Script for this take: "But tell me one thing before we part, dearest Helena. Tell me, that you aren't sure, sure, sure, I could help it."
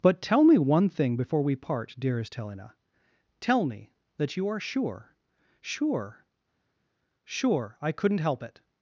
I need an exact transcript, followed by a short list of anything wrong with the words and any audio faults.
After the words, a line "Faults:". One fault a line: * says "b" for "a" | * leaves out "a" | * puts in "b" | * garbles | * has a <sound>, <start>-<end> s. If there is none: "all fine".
"But tell me one thing before we part, dearest Helena. Tell me, that you are sure, sure, sure, I couldn't help it."
Faults:
* says "are" for "aren't"
* says "couldn't" for "could"